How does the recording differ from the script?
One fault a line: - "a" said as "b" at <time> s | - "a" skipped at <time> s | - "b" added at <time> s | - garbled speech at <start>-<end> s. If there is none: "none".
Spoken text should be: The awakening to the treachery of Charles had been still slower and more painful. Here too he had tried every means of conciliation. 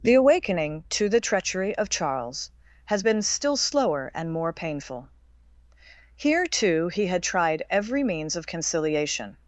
- "had" said as "has" at 2.9 s